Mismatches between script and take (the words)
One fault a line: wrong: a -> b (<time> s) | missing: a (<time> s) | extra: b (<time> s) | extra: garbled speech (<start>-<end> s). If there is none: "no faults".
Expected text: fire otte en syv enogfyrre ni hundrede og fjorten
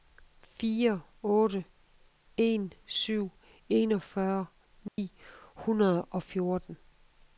no faults